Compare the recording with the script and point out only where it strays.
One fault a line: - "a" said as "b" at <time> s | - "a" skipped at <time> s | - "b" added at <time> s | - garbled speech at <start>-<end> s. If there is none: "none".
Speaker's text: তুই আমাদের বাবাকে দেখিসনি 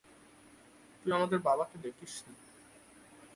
none